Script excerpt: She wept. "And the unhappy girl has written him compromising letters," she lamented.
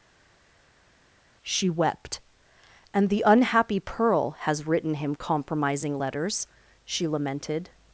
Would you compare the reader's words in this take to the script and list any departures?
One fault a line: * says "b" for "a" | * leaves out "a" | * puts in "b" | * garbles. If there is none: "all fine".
* says "pearl" for "girl"